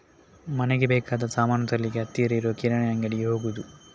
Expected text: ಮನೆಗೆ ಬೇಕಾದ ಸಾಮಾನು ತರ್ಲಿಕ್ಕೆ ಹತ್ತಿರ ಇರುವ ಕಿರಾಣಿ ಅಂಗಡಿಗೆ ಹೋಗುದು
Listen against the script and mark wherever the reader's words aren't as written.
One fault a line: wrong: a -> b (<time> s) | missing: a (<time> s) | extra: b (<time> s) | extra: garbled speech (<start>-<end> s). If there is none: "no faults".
no faults